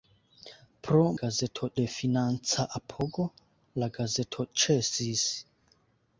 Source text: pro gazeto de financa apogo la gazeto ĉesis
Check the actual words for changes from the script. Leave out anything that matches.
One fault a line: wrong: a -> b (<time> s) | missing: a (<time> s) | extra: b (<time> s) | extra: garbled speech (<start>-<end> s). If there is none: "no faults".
no faults